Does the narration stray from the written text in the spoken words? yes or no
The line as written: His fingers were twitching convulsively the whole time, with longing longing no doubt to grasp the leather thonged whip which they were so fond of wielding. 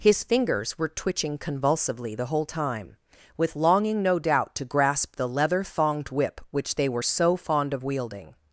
yes